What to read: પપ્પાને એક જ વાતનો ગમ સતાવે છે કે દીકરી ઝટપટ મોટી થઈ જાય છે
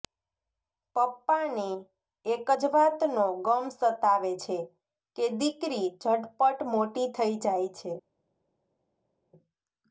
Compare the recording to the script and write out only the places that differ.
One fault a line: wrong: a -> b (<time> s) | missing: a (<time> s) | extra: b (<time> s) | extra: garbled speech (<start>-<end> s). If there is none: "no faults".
no faults